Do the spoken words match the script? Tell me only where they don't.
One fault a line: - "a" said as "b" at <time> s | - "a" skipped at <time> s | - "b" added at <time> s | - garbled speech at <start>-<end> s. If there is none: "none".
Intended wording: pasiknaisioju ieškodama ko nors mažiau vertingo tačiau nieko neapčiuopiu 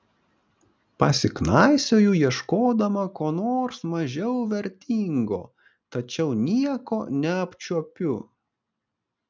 none